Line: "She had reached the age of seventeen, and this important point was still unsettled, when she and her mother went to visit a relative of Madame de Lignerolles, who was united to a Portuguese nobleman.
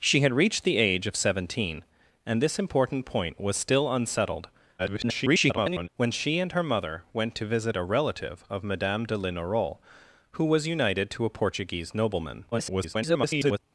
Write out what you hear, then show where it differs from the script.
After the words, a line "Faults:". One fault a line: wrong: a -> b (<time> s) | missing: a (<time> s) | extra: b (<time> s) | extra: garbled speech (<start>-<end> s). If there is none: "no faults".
"She had reached the age of seventeen, and this important point was still unsettled, [garbled] when she and her mother went to visit a relative of Madame de Lignerolles, who was united to a Portuguese nobleman. [garbled]
Faults:
extra: garbled speech (4.8-5.9 s)
extra: garbled speech (12.5-13.6 s)